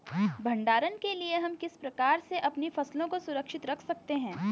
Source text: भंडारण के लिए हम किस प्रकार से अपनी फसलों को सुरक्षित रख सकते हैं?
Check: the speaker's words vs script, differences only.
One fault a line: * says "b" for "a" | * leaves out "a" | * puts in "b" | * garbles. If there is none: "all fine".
all fine